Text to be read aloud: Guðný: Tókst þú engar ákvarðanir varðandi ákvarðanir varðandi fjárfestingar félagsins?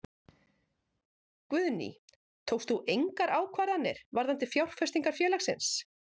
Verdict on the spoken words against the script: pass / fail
fail